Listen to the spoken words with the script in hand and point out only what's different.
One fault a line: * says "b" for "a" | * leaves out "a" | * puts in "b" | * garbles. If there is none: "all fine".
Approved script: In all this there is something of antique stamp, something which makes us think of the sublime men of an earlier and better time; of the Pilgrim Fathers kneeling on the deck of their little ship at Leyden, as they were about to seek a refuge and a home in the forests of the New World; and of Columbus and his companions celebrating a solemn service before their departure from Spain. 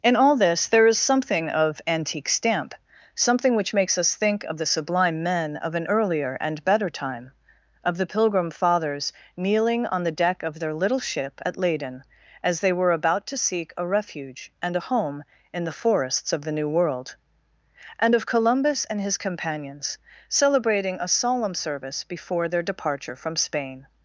all fine